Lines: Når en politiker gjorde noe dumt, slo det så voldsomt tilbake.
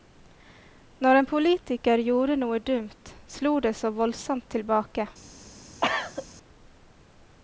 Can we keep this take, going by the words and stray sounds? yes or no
no